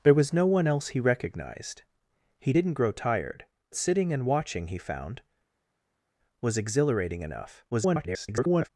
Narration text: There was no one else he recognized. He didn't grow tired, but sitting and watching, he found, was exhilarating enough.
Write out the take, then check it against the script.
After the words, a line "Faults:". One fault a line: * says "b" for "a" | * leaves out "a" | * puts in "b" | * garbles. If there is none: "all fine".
There was no one else he recognized. He didn't grow tired, sitting and watching, he found, was exhilarating enough. [garbled]
Faults:
* leaves out "but"
* garbles